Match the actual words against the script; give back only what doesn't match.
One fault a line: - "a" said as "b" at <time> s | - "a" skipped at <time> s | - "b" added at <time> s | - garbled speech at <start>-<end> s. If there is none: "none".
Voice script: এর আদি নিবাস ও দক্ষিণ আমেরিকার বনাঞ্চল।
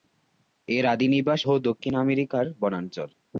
none